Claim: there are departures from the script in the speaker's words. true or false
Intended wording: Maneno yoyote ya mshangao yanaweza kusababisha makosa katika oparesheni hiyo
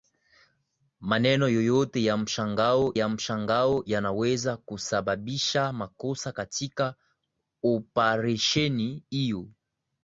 true